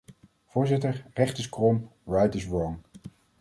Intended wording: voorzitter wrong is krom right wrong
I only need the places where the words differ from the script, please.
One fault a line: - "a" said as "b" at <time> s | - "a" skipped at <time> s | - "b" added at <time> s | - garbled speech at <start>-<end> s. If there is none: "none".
- "wrong" said as "recht" at 1.1 s
- "is" added at 2.4 s